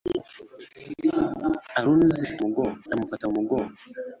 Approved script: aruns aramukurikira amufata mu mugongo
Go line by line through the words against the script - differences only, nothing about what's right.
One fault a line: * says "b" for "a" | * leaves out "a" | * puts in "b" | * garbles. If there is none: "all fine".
* says "mugongo" for "aramukurikira"